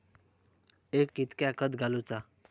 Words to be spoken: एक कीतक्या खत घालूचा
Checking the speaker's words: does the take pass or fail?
pass